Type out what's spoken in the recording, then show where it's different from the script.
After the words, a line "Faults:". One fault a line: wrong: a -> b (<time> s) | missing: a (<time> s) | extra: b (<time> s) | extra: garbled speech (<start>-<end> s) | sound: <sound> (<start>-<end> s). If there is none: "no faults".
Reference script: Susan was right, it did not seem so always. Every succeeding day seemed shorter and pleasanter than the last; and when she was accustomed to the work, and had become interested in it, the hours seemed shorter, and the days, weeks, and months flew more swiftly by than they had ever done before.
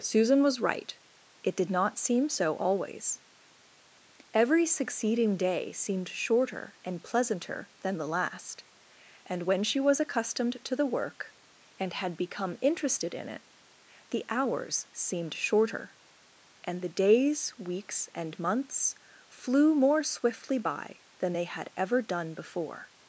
Susan was right, it did not seem so always. Every succeeding day seemed shorter and pleasanter than the last; and when she was accustomed to the work, and had become interested in it, the hours seemed shorter, and the days, weeks, and months flew more swiftly by than they had ever done before.
Faults:
no faults